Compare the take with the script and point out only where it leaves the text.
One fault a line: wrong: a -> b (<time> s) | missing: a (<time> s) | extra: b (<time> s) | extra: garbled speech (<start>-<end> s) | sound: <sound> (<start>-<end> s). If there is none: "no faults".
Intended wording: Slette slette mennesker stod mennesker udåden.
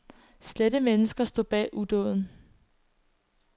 missing: slette (0.8 s)
wrong: mennesker -> bag (1.4 s)